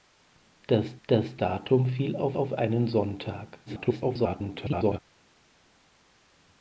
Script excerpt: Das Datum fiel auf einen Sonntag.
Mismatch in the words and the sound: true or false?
true